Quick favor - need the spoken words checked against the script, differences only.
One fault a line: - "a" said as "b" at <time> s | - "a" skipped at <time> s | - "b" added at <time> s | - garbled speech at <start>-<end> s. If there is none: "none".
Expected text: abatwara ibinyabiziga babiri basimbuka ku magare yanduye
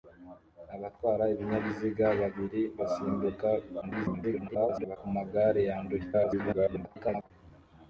- garbled speech at 3.8-5.0 s
- garbled speech at 6.1-7.3 s